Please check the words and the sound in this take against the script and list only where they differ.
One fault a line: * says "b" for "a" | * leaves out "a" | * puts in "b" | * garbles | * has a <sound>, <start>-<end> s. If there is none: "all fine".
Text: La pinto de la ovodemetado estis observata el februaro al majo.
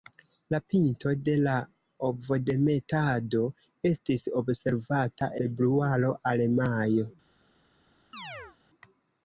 * leaves out "el"
* has a chirp, 8.1-8.6 s